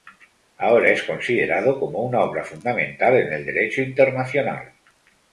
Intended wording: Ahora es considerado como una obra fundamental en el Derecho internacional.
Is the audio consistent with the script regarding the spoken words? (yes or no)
yes